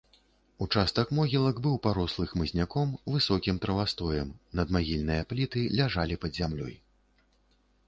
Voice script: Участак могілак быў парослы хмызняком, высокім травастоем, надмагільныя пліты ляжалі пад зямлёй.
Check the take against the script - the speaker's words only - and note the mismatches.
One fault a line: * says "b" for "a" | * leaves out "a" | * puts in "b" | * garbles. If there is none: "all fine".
all fine